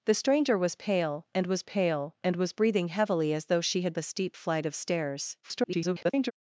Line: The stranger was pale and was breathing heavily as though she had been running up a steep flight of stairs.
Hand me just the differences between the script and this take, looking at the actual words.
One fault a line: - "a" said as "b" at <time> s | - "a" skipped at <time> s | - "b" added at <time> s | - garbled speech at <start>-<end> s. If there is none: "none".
- "pale and was" added at 1.6 s
- "been running up" skipped at 3.9 s
- garbled speech at 5.4-6.3 s